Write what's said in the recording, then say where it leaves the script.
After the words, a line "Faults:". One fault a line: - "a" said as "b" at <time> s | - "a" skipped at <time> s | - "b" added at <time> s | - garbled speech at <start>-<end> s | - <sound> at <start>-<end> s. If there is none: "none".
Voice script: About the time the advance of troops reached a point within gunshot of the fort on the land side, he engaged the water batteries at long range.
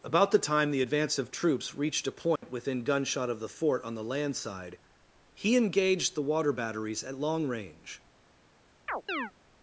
About the time the advance of troops reached a point within gunshot of the fort on the land side, he engaged the water batteries at long range.
Faults:
- dropout at 2.4-2.4 s
- chirp at 8.9-9.3 s